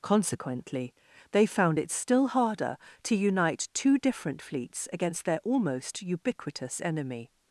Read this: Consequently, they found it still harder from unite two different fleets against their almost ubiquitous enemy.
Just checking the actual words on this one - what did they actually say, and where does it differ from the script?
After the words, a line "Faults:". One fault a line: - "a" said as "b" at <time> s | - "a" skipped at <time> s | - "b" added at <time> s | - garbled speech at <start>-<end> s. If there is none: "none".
Consequently, they found it still harder to unite two different fleets against their almost ubiquitous enemy.
Faults:
- "from" said as "to" at 3.0 s